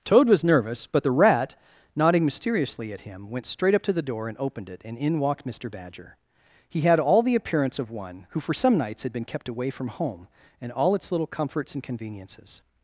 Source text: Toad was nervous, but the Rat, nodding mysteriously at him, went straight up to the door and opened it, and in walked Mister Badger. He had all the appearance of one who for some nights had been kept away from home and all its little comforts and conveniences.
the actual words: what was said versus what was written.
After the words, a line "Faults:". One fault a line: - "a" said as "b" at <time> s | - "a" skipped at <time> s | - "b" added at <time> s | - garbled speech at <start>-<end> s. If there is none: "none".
Toad was nervous, but the Rat, nodding mysteriously at him, went straight up to the door and opened it, and in walked Mister Badger. He had all the appearance of one who for some nights had been kept away from home and all its little comforts and conveniences.
Faults:
none